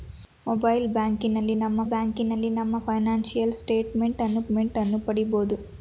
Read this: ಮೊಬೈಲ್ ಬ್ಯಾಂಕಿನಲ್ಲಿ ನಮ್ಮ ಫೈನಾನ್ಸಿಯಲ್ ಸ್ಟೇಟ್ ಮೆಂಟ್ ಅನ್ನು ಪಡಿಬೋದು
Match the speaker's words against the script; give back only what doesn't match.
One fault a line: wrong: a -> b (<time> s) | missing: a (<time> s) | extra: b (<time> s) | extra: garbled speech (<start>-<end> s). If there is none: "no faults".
extra: ಬ್ಯಾಂಕಿನಲ್ಲಿ ನಮ್ಮ (1.9 s)
extra: ಮೆಂಟ್ ಅನ್ನು (4.5 s)